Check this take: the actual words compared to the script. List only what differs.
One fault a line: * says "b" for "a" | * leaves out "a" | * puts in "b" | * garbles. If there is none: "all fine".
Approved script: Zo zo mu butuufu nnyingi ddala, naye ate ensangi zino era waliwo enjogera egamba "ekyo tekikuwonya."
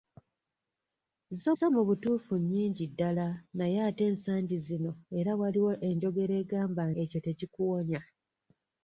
all fine